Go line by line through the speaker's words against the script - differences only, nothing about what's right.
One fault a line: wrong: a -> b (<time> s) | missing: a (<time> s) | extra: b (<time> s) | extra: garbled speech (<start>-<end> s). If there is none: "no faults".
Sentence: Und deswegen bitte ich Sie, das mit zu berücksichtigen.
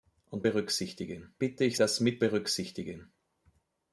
wrong: deswegen -> berücksichtigen (0.4 s)
missing: Sie (1.8 s)
missing: zu (2.2 s)